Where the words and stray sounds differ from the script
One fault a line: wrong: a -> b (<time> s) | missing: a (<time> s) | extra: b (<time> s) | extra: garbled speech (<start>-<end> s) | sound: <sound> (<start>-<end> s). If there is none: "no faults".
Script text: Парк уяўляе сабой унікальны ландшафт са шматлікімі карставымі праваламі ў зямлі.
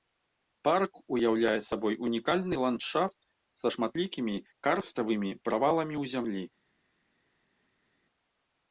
no faults